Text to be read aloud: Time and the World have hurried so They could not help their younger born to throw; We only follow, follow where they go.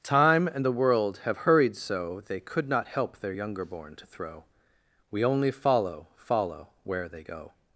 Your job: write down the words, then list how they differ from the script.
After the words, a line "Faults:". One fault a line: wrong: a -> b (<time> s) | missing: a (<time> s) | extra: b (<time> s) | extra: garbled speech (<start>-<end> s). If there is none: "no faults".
Time and the World have hurried so They could not help their younger born to throw; We only follow, follow where they go.
Faults:
no faults